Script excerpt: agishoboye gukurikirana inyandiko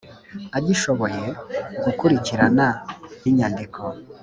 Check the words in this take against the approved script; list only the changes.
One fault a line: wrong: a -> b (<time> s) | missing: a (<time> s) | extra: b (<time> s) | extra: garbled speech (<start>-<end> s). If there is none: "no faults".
no faults